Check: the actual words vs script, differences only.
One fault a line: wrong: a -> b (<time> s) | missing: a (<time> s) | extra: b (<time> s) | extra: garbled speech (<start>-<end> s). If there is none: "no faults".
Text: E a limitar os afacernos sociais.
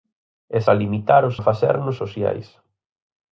no faults